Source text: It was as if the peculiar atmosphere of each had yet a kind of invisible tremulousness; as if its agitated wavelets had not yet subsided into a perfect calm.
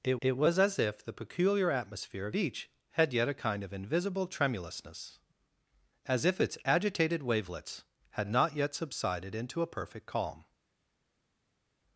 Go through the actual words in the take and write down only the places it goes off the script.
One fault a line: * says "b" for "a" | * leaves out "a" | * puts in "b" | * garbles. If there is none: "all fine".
* puts in "it"